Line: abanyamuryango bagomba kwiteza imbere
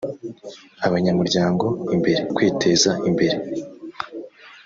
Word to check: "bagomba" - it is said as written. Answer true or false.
false